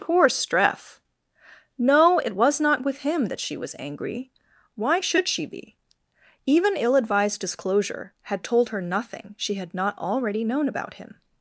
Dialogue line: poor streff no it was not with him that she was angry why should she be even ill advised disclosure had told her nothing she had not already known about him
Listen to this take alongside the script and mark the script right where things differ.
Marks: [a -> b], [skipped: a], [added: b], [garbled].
poor streff no it was not with him that she was angry why should she be even ill advised disclosure had told her nothing she had not already known about him